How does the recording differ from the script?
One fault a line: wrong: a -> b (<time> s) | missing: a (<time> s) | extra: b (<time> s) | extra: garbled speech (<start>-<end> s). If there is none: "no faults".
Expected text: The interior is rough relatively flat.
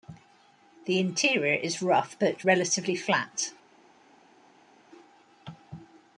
extra: but (2.2 s)